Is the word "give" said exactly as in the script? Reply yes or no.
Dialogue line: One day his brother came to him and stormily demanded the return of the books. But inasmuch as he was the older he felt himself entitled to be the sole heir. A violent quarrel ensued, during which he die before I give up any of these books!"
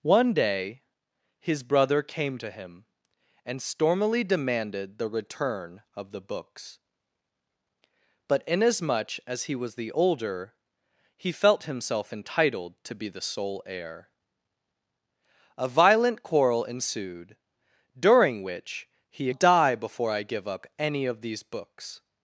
yes